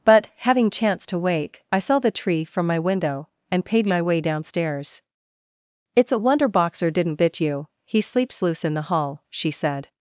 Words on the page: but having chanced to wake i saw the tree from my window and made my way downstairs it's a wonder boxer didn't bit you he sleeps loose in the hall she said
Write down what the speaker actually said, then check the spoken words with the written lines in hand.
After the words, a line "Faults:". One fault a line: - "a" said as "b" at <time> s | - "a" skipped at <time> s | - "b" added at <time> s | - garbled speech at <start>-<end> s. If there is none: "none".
but having chanced to wake i saw the tree from my window and paid my way downstairs it's a wonder boxer didn't bit you he sleeps loose in the hall she said
Faults:
- "made" said as "paid" at 3.6 s